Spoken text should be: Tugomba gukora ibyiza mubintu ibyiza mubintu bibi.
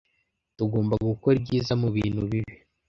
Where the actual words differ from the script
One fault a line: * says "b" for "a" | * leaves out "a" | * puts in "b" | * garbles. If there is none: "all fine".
* leaves out "ibyiza mubintu"